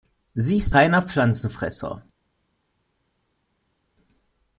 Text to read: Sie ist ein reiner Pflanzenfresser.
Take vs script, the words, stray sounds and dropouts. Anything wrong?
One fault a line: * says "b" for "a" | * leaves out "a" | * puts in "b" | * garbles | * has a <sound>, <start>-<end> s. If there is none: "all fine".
* leaves out "ein"